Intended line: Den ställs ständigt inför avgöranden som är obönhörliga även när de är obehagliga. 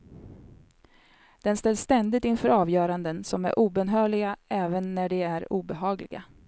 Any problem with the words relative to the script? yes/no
no